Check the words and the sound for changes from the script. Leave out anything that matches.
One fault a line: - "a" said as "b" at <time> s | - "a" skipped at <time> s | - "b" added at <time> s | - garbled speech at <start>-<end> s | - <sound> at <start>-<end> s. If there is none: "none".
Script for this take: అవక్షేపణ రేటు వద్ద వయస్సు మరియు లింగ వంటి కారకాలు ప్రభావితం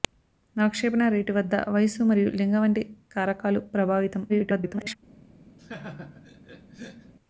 - garbled speech at 4.3-5.0 s
- laugh at 5.6-7.1 s